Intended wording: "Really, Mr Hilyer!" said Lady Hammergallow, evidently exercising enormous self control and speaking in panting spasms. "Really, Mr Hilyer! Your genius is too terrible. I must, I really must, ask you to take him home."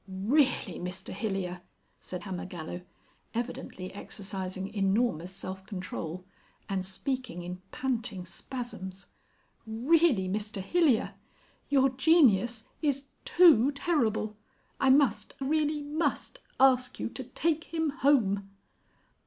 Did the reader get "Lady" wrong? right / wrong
wrong